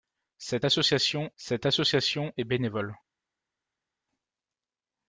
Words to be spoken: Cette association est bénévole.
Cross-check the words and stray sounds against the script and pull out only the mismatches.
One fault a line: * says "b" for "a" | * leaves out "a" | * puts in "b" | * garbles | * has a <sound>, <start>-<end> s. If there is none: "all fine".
* puts in "cette association"